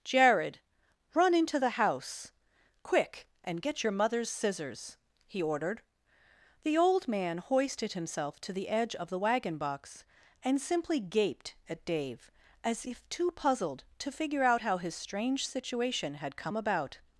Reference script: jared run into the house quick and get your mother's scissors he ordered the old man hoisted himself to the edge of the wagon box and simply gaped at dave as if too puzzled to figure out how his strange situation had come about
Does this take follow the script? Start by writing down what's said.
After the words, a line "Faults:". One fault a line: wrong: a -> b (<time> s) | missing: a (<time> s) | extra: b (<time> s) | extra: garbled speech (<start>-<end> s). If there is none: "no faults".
jared run into the house quick and get your mother's scissors he ordered the old man hoisted himself to the edge of the wagon box and simply gaped at dave as if too puzzled to figure out how his strange situation had come about
Faults:
no faults